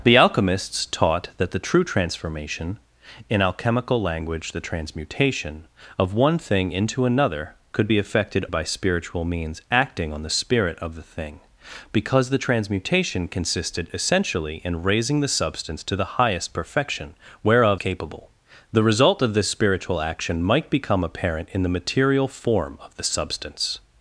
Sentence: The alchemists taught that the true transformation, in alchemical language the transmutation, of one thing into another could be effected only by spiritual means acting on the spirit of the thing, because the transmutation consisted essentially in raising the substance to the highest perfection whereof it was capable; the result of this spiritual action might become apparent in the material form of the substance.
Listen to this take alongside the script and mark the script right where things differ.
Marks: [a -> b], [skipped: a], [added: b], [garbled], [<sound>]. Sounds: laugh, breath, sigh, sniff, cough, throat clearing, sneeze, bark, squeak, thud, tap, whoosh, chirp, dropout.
The alchemists taught that the true transformation, in alchemical language the transmutation, of one thing into another could be effected [skipped: only] by spiritual means acting on the spirit of the thing, because the transmutation consisted essentially in raising the substance to the highest perfection whereof [skipped: it was] capable; the result of this spiritual action might become apparent in the material form of the substance.